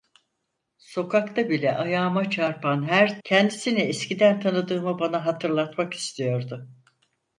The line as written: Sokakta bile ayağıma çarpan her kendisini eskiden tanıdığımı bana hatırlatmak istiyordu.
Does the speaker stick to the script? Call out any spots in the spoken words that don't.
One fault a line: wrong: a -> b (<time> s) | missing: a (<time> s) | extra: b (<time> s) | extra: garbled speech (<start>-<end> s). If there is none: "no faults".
no faults